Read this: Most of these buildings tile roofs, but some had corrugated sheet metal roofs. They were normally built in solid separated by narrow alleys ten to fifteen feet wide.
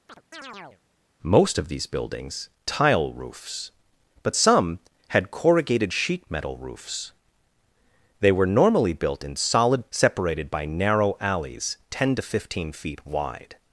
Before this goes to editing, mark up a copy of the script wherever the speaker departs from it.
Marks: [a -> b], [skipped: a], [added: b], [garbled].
Most of these buildings tile roofs, but some had corrugated sheet metal roofs. They were normally built in solid separated by narrow alleys ten to fifteen feet wide.